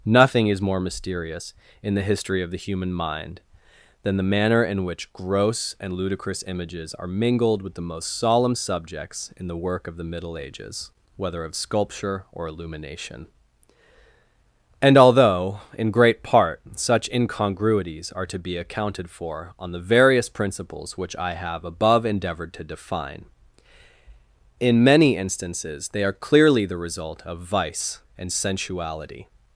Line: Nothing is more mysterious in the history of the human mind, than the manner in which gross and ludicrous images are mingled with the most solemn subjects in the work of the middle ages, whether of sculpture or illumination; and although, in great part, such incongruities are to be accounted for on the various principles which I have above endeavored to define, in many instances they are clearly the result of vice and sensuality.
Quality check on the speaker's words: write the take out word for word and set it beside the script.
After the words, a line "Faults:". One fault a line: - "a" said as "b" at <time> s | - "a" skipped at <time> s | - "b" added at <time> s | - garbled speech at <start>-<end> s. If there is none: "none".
Nothing is more mysterious in the history of the human mind, than the manner in which gross and ludicrous images are mingled with the most solemn subjects in the work of the middle ages, whether of sculpture or illumination; and although, in great part, such incongruities are to be accounted for on the various principles which I have above endeavored to define, in many instances they are clearly the result of vice and sensuality.
Faults:
none